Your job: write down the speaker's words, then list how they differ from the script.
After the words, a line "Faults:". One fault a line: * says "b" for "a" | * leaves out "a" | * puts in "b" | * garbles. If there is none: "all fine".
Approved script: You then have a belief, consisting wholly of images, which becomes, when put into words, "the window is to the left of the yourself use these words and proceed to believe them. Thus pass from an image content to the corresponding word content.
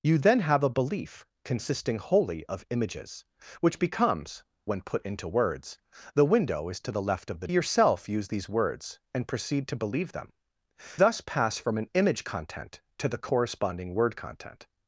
You then have a belief, consisting wholly of images, which becomes, when put into words, "the window is to the left of the yourself use these words and proceed to believe them. Thus pass from an image content to the corresponding word content.
Faults:
all fine